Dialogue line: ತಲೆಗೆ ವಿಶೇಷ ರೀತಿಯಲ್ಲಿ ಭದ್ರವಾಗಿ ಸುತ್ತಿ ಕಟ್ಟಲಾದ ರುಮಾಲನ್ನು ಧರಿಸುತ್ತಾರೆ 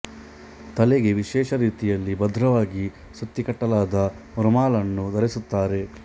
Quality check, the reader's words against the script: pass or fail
pass